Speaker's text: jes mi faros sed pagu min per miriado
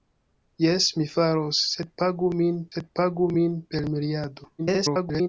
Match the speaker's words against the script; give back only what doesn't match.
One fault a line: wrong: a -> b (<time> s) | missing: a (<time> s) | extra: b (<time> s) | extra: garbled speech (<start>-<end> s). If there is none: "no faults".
extra: sed pagu min (2.7 s)
extra: garbled speech (4.6-5.3 s)